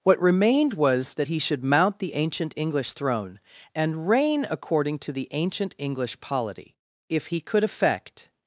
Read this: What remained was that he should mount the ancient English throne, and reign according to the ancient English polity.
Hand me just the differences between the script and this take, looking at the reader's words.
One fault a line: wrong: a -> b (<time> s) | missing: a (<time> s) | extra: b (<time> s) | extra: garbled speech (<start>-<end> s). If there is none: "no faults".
extra: If he could effect (7.1 s)